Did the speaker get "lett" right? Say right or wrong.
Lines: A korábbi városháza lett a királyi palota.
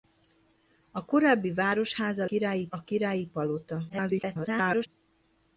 wrong